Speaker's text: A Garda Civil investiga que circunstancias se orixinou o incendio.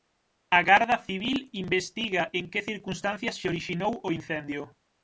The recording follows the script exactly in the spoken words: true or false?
false